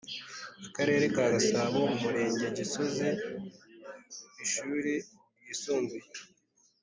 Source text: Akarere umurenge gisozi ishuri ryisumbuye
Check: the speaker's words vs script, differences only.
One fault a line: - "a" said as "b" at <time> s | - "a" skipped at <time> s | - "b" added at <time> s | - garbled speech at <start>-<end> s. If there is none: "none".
- "ka gasabo" added at 1.1 s